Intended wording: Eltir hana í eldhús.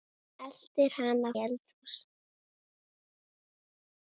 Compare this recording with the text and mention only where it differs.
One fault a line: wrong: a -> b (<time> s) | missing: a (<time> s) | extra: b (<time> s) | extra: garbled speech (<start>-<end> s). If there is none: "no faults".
no faults